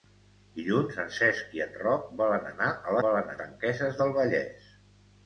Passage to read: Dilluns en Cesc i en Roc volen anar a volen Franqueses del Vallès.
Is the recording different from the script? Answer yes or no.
no